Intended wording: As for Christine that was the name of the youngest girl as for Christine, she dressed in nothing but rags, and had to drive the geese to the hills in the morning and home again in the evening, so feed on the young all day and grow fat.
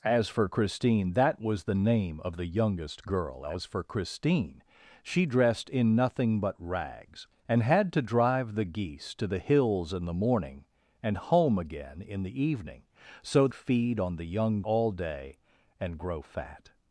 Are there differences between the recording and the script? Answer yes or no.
no